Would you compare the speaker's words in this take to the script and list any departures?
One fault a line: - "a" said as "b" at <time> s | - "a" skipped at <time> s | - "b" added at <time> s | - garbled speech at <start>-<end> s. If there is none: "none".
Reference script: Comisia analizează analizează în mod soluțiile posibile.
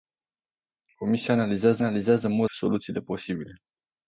none